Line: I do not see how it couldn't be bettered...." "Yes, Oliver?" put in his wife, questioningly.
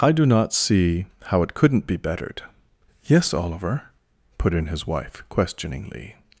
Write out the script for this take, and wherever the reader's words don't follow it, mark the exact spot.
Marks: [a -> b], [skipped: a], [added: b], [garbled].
I do not see how it couldn't be bettered...." "Yes, Oliver?" put in his wife, questioningly.